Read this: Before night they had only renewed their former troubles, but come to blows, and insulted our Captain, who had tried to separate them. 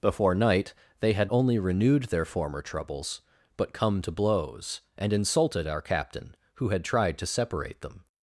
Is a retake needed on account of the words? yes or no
no